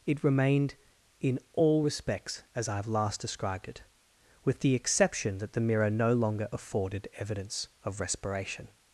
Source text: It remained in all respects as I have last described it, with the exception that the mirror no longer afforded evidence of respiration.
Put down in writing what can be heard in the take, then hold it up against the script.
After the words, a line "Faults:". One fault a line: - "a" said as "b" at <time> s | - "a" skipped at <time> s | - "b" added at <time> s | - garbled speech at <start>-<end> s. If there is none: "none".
It remained in all respects as I have last described it, with the exception that the mirror no longer afforded evidence of respiration.
Faults:
none